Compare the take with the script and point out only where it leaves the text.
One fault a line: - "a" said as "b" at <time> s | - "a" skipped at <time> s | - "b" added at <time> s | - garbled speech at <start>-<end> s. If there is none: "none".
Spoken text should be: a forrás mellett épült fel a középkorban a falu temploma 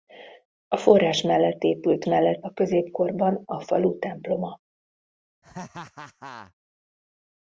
- "fel" said as "mellett" at 2.0 s